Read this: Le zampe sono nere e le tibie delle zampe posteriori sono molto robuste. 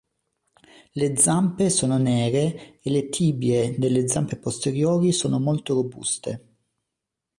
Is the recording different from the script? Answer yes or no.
no